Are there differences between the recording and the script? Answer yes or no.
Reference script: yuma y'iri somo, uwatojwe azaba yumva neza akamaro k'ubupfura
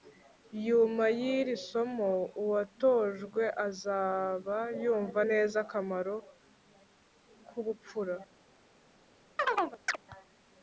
no